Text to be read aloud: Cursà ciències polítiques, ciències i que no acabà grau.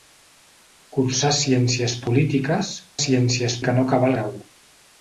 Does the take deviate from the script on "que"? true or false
false